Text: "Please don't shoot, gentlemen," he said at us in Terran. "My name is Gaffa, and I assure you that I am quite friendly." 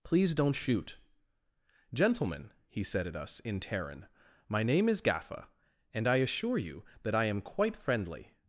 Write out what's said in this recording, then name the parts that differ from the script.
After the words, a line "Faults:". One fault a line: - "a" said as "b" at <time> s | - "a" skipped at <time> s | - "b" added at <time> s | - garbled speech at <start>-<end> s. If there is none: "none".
"Please don't shoot, gentlemen," he said at us in Terran. "My name is Gaffa, and I assure you that I am quite friendly."
Faults:
none